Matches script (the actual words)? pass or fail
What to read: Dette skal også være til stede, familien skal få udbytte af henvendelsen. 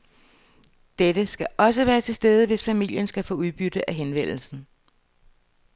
fail